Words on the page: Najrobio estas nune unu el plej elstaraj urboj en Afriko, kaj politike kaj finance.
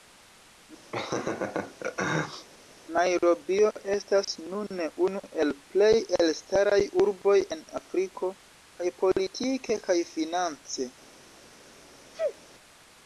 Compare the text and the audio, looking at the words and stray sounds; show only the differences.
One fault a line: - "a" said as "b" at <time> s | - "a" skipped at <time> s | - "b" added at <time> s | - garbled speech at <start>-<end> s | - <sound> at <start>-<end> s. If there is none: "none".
- laugh at 0.9-2.5 s
- sneeze at 12.1-12.4 s